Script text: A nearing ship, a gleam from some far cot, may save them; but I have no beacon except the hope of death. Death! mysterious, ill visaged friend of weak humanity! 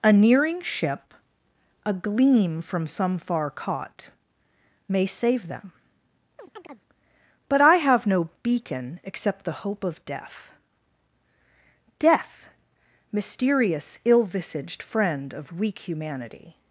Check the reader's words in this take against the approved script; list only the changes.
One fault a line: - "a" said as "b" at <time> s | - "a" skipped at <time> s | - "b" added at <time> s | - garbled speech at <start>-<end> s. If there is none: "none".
none